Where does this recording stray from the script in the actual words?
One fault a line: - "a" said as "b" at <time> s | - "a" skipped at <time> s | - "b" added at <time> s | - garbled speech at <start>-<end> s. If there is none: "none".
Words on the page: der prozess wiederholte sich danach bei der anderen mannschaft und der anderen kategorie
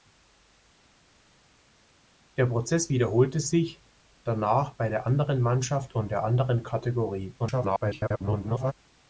- garbled speech at 7.4-8.7 s